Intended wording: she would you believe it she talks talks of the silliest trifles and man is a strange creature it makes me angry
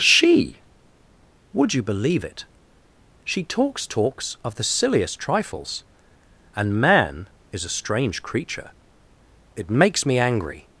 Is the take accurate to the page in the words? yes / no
yes